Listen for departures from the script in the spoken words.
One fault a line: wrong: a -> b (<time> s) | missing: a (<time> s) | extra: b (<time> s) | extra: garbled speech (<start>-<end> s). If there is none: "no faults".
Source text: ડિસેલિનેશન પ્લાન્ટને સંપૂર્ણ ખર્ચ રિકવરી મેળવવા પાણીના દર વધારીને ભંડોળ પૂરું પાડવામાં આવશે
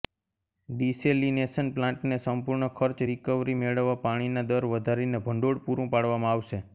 no faults